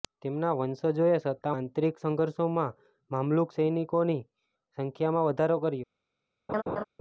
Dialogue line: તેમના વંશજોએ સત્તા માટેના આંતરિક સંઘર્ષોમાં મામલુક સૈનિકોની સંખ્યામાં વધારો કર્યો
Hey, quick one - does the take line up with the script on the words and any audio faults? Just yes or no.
no